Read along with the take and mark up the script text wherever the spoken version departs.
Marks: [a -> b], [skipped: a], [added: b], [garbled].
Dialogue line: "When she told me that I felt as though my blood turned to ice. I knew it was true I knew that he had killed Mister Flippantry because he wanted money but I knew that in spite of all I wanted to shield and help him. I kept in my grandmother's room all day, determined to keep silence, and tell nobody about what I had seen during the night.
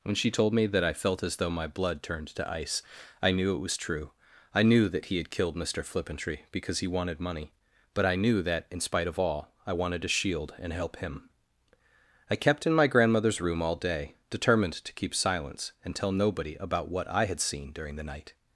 "When she told me that I felt as though my blood turned to ice. I knew it was true I knew that he had killed Mister Flippantry because he wanted money but I knew that in spite of all I wanted to shield and help him. I kept in my grandmother's room all day, determined to keep silence, and tell nobody about what I had seen during the night.